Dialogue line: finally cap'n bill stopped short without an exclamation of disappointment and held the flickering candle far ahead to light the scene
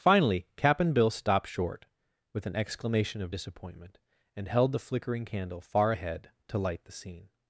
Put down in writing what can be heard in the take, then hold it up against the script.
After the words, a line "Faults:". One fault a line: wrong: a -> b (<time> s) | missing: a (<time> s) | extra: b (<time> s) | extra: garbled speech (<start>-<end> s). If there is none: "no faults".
finally cap'n bill stopped short with an exclamation of disappointment and held the flickering candle far ahead to light the scene
Faults:
wrong: without -> with (2.3 s)